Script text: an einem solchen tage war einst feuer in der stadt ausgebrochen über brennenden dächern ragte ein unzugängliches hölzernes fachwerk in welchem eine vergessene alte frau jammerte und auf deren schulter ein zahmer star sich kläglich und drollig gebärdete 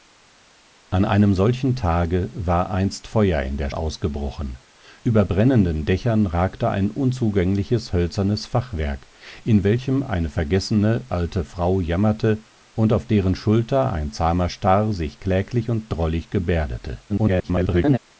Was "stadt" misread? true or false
true